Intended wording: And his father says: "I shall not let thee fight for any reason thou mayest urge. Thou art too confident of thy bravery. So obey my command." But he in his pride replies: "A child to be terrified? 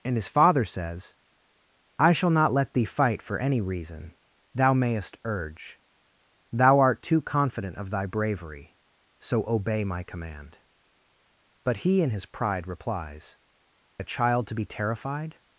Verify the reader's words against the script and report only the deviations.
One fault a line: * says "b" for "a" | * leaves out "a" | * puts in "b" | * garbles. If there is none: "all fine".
all fine